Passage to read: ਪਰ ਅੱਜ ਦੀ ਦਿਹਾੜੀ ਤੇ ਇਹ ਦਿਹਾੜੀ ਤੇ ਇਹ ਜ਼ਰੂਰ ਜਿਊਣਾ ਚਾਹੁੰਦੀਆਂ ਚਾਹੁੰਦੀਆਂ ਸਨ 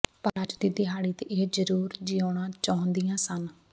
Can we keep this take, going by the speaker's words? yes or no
no